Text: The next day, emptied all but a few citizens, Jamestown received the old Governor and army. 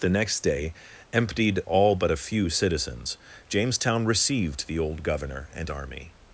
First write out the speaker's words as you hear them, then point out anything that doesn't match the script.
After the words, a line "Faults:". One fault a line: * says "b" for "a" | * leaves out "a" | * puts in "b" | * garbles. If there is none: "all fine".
The next day, emptied all but a few citizens, Jamestown received the old Governor and army.
Faults:
all fine